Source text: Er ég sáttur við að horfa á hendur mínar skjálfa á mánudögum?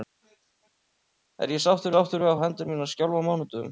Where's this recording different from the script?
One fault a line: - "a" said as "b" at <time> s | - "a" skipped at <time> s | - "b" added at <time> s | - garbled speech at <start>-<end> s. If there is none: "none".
- "sáttur" added at 1.9 s
- "horfa" skipped at 2.4 s